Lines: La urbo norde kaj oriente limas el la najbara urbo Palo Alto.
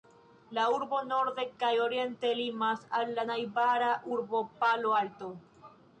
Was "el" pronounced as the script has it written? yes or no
no